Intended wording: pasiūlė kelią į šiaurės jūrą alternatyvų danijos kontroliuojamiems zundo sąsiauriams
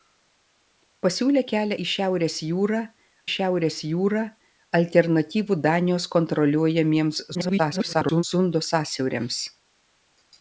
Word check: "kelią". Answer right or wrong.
right